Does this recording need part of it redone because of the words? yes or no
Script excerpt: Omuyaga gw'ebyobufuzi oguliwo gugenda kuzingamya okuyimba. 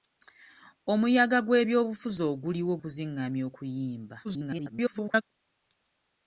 yes